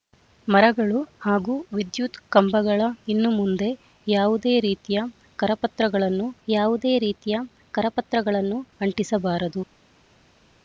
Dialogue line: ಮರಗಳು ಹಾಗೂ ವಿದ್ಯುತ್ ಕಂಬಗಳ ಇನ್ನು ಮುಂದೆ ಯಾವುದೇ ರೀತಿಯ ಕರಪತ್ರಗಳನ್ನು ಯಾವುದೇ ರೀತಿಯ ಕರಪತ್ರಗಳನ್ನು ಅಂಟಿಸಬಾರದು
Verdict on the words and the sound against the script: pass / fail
pass